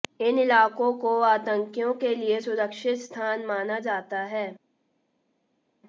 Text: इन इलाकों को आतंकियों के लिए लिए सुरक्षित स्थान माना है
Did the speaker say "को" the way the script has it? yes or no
yes